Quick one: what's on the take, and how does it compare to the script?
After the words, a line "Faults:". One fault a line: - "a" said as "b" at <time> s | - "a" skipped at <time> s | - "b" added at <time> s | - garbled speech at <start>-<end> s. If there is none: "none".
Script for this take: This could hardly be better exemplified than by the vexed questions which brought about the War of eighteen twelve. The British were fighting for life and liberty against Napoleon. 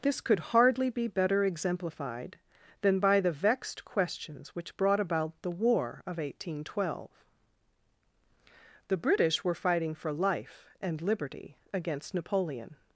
This could hardly be better exemplified than by the vexed questions which brought about the War of eighteen twelve. The British were fighting for life and liberty against Napoleon.
Faults:
none